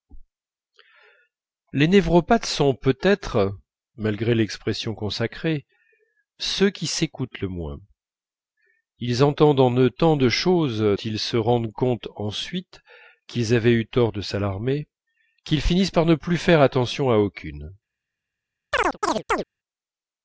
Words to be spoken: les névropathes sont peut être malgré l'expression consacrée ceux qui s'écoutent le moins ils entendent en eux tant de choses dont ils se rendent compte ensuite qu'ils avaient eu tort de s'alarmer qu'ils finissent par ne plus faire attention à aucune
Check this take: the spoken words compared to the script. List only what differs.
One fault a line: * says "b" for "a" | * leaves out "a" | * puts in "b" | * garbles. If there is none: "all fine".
* leaves out "dont"